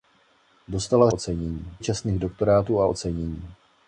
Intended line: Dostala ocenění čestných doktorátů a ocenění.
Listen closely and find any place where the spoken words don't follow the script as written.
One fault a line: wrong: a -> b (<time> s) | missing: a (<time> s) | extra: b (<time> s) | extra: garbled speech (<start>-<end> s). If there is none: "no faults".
no faults